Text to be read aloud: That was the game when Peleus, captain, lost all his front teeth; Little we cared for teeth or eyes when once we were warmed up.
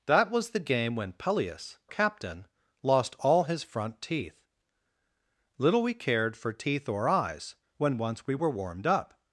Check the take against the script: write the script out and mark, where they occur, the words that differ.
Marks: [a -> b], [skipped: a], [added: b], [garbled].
That was the game when Peleus, captain, lost all his front teeth; Little we cared for teeth or eyes when once we were warmed up.